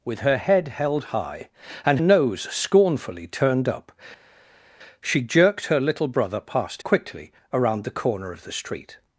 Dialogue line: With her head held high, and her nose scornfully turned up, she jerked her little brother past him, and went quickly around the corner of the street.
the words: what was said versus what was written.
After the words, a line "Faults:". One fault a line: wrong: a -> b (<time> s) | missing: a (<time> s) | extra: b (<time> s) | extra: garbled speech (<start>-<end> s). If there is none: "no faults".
With her head held high, and nose scornfully turned up, she jerked her little brother past quickly around the corner of the street.
Faults:
missing: her (2.0 s)
missing: him and went (6.8 s)